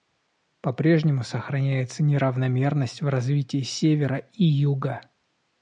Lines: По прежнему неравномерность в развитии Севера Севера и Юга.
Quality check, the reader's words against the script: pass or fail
fail